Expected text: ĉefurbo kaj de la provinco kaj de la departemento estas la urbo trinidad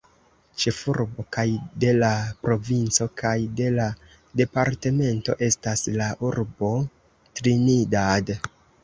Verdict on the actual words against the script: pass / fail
pass